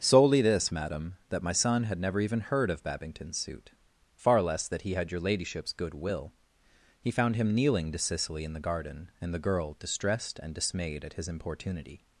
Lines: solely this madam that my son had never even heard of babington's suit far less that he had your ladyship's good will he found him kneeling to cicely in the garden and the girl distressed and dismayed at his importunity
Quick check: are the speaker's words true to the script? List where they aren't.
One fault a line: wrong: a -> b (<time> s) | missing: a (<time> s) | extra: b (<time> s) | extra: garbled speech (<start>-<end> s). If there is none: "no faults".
no faults